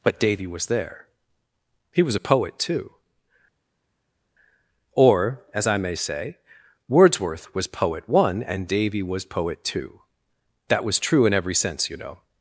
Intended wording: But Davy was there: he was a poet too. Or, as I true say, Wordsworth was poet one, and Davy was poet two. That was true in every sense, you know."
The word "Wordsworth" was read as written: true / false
true